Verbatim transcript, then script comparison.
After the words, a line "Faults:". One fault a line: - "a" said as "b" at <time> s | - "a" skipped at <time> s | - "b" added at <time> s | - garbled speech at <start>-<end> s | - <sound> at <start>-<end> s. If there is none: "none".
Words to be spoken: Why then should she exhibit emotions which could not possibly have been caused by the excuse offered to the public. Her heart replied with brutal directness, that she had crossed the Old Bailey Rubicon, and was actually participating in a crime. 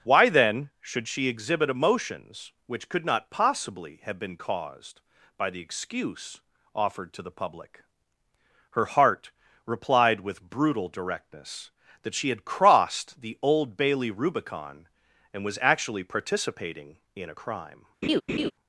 Why then should she exhibit emotions which could not possibly have been caused by the excuse offered to the public. Her heart replied with brutal directness, that she had crossed the Old Bailey Rubicon, and was actually participating in a crime.
Faults:
- laugh at 18.0-18.5 s